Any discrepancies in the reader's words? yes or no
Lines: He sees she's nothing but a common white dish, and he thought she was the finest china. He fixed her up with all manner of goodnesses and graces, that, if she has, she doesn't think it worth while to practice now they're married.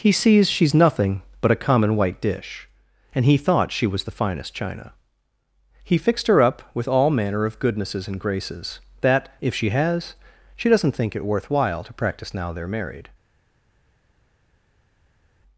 no